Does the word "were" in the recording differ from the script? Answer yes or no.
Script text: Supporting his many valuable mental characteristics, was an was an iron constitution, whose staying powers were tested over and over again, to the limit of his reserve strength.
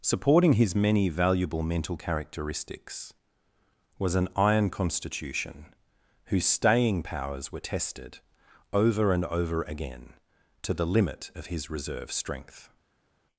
no